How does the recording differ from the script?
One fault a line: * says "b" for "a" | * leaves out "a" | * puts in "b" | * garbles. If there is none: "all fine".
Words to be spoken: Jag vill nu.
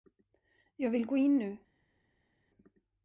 * puts in "gå in"